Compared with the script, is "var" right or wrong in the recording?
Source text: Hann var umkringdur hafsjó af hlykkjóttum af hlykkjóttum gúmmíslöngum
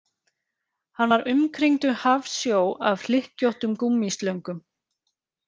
right